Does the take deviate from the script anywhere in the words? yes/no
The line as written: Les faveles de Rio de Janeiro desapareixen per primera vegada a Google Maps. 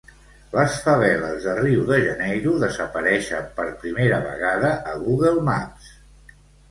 no